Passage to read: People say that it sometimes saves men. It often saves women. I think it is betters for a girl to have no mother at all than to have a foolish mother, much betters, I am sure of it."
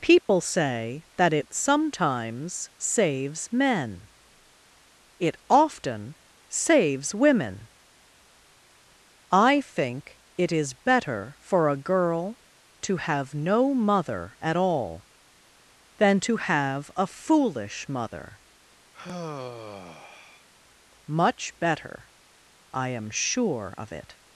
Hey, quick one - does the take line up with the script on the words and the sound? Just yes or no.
no